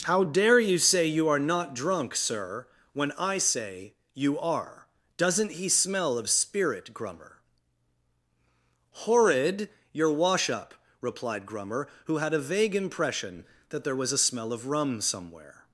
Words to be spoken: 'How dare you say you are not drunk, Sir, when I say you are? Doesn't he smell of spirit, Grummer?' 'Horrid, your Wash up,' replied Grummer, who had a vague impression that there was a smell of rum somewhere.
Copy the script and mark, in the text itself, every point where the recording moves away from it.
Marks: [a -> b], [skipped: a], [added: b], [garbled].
'How dare you say you are not drunk, Sir, when I say you are? Doesn't he smell of spirit, Grummer?' 'Horrid, your Wash up,' replied Grummer, who had a vague impression that there was a smell of rum somewhere.